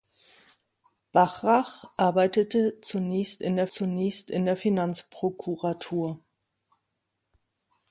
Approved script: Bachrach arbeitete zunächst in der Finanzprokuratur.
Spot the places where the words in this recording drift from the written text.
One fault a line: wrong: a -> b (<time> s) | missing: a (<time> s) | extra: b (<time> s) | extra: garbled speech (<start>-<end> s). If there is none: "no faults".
extra: zunächst in der (3.7 s)